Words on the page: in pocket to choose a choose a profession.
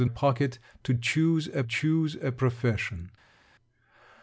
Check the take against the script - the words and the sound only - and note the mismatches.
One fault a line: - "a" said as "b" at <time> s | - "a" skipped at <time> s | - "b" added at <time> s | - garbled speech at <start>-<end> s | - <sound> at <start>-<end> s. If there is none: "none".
none